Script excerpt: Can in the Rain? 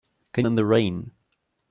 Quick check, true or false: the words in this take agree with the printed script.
true